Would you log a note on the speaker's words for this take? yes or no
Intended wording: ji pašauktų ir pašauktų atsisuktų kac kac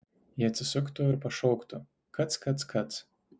yes